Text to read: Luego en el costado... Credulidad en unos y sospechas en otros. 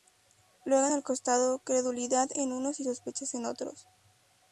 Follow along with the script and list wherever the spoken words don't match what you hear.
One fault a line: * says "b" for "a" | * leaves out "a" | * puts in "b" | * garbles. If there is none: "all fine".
all fine